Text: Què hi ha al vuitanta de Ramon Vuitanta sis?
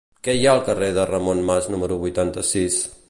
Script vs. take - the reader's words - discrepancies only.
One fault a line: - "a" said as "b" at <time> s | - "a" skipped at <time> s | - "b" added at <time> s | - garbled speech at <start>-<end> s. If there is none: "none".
- "vuitanta" said as "carrer" at 0.7 s
- "Mas número" added at 1.5 s